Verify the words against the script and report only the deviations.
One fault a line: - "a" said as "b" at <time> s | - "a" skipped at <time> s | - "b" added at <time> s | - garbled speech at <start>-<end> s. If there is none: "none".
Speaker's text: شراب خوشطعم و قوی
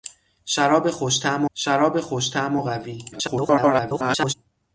- "شراب خوشطعم" added at 1.5 s
- garbled speech at 3.1-4.3 s